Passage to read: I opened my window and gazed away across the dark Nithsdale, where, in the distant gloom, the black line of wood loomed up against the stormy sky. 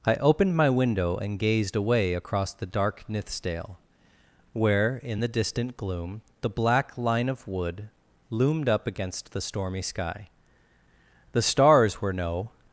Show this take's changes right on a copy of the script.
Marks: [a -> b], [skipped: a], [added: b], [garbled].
I opened my window and gazed away across the dark Nithsdale, where, in the distant gloom, the black line of wood loomed up against the stormy sky. [added: The stars were no]